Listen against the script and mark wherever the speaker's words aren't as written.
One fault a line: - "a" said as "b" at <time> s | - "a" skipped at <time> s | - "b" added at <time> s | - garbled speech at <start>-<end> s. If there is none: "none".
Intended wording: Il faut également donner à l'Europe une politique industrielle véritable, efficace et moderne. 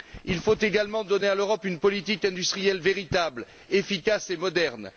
none